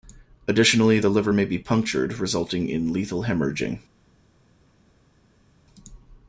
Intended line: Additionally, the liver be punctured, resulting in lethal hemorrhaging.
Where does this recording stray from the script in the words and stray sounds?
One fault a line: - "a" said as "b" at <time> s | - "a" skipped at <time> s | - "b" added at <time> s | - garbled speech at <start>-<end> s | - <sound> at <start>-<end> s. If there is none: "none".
- "may" added at 1.3 s